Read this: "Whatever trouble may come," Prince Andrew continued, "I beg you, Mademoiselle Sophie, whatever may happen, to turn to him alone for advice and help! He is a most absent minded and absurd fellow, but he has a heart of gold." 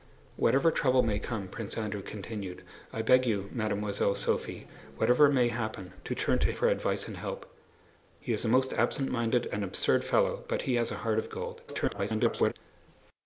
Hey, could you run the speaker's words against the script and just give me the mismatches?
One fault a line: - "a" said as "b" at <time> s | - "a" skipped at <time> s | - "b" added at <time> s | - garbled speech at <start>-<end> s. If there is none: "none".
- "him alone" skipped at 6.5 s
- garbled speech at 11.7-12.5 s